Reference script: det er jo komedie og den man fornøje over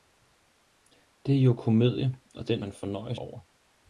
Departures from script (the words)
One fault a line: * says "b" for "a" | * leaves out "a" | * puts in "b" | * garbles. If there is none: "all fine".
all fine